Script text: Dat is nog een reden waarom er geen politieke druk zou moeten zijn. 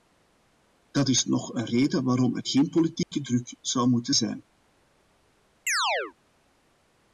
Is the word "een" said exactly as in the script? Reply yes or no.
yes